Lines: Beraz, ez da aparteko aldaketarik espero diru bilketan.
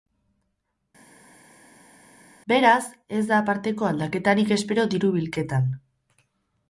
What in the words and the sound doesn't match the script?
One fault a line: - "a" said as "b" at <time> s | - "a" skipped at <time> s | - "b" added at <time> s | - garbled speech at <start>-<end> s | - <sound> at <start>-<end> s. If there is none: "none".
none